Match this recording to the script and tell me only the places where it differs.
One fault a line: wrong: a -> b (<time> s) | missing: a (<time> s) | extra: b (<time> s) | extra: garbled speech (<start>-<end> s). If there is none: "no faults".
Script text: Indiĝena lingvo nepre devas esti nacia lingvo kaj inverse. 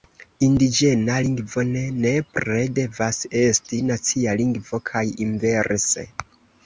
extra: ne (1.7 s)